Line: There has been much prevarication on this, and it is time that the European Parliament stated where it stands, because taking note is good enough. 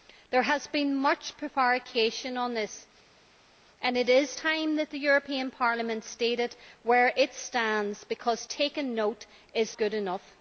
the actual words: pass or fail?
pass